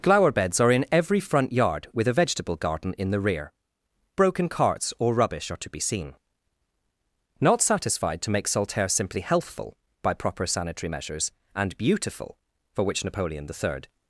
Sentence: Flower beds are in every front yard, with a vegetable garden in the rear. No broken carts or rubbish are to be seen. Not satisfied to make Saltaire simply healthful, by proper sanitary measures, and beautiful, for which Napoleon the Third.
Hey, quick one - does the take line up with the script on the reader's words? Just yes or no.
no